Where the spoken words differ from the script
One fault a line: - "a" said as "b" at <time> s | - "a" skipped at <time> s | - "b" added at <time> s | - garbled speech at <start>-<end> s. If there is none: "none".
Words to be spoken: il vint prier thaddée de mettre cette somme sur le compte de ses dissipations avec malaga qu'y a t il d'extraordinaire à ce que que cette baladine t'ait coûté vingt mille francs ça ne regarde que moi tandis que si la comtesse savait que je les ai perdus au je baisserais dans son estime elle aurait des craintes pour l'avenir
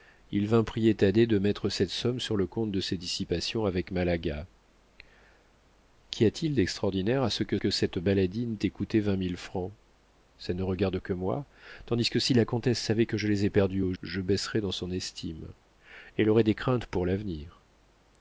none